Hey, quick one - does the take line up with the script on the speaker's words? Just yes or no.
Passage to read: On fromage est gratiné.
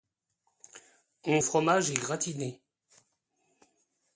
yes